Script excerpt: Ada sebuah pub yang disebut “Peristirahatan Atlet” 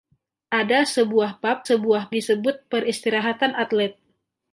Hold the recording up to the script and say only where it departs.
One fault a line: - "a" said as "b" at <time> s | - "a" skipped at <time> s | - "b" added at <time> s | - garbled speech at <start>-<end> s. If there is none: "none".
- "yang" said as "sebuah" at 1.6 s